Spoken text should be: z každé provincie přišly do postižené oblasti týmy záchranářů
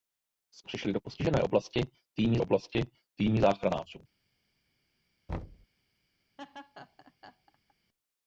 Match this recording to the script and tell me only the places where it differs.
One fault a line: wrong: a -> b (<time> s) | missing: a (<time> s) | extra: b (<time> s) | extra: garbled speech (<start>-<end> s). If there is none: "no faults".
missing: každé provincie (0.6 s)
extra: oblasti týmy (2.4 s)